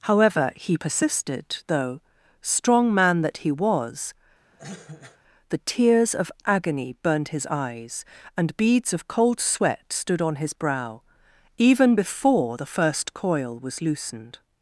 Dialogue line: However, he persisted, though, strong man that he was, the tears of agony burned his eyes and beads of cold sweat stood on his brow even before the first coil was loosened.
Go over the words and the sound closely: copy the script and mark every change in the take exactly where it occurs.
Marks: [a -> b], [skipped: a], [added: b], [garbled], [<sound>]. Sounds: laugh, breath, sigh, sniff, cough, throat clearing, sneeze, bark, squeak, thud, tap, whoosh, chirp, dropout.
However, he persisted, though, strong man that he was, [cough] the tears of agony burned his eyes and beads of cold sweat stood on his brow even before the first coil was loosened.